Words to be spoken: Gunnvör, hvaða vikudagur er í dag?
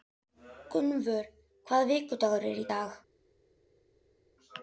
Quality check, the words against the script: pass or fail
pass